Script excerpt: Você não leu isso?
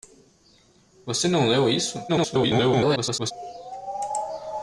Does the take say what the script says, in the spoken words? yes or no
no